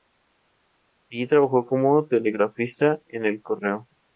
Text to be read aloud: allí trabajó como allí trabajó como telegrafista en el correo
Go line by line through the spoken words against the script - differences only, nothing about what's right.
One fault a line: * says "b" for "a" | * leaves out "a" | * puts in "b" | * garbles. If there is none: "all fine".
* leaves out "allí trabajó como"